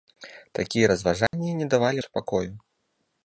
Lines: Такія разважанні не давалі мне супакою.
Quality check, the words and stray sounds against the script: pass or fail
fail